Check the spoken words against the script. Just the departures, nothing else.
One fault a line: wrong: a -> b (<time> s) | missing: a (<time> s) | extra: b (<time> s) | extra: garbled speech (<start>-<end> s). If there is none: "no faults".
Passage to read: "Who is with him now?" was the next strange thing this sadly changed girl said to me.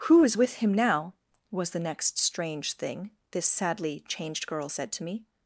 no faults